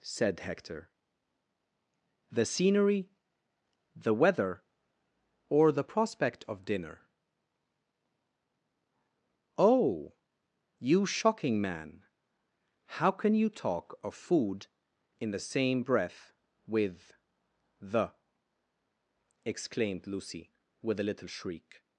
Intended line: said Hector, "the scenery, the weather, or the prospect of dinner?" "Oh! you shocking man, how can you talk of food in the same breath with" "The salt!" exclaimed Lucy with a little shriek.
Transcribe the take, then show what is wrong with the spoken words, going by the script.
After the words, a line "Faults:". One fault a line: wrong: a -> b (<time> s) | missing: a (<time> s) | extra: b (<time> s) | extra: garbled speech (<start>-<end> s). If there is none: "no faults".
said Hector, "the scenery, the weather, or the prospect of dinner?" "Oh! you shocking man, how can you talk of food in the same breath with" "The!" exclaimed Lucy with a little shriek.
Faults:
missing: salt (18.1 s)